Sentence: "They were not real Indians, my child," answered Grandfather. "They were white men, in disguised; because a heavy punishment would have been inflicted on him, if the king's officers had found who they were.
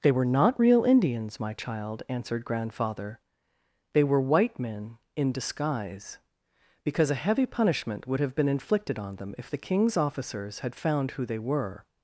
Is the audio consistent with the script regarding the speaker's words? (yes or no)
no